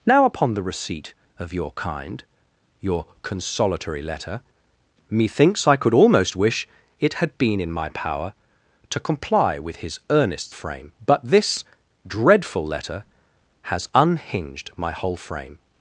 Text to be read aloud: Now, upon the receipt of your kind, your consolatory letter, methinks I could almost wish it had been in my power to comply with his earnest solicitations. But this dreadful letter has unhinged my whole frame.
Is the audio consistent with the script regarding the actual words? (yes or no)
no